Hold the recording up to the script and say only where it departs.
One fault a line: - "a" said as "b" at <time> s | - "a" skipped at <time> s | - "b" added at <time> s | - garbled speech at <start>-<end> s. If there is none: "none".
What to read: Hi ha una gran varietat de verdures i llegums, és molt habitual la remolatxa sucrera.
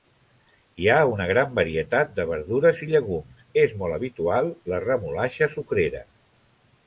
none